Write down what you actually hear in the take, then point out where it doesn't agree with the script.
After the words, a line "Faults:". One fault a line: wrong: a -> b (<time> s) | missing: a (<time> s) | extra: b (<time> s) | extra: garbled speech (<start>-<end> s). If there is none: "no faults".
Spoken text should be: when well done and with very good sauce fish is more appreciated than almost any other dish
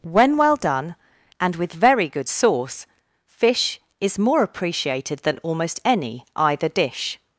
when well done and with very good sauce fish is more appreciated than almost any either dish
Faults:
wrong: other -> either (6.4 s)